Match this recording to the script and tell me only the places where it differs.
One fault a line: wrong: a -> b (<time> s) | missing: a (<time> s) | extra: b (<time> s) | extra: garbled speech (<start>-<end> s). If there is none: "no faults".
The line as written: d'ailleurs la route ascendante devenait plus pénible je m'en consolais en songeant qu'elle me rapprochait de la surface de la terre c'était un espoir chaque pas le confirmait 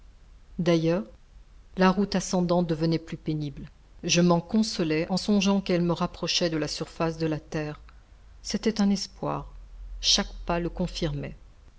no faults